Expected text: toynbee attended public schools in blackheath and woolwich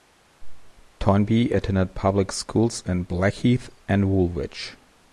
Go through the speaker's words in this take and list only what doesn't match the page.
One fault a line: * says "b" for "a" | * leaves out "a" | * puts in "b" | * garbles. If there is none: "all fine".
all fine